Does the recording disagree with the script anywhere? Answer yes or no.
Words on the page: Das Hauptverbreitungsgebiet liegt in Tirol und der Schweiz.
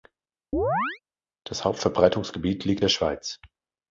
yes